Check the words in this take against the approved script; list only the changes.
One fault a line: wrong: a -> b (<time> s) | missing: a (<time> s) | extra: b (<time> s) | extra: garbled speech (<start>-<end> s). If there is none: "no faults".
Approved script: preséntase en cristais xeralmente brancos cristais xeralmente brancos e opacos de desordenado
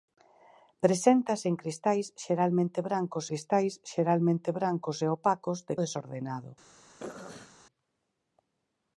no faults